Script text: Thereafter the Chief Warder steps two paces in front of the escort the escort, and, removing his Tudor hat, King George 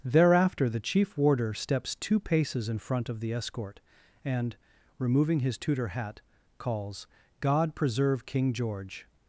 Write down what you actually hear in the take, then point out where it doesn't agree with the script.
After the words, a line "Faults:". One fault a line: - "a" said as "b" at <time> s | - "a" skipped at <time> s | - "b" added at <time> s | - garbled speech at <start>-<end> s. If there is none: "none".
Thereafter the Chief Warder steps two paces in front of the escort, and, removing his Tudor hat, calls" God preserve King George
Faults:
- "the escort" skipped at 3.8 s
- "calls God preserve" added at 6.6 s